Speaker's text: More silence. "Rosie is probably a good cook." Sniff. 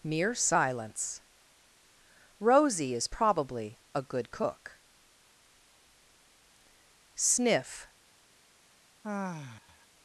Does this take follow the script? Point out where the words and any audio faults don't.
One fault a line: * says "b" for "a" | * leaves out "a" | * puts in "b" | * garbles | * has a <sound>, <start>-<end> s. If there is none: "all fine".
* says "Mere" for "More"
* has a sigh, 9.0-9.9 s